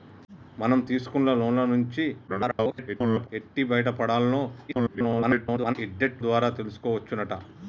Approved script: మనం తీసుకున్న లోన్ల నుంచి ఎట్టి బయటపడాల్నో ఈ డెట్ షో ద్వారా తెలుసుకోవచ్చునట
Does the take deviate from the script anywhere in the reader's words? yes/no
yes